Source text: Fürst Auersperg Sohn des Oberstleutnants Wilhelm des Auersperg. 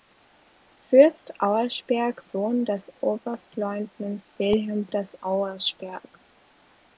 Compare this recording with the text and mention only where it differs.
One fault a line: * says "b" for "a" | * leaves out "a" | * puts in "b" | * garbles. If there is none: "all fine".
all fine